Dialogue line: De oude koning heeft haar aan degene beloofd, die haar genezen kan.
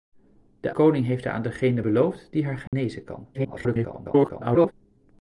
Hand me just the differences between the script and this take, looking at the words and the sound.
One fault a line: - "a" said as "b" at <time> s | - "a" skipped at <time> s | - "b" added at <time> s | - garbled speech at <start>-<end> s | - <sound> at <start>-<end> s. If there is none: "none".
- "oude" skipped at 0.7 s
- dropout at 2.7-2.7 s
- garbled speech at 3.3-4.7 s